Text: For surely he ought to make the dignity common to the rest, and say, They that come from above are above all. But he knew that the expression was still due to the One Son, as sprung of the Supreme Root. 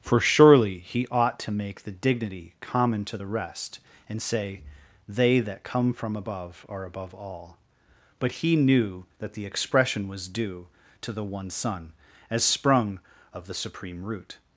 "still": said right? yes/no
no